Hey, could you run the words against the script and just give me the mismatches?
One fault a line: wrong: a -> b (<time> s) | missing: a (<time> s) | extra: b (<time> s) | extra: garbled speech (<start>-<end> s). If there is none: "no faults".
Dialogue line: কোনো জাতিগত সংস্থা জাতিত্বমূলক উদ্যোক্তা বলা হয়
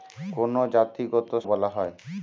missing: সংস্থা জাতিত্বমূলক উদ্যোক্তা (1.3 s)